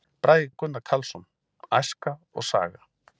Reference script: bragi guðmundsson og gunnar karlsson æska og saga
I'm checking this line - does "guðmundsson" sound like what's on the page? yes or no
no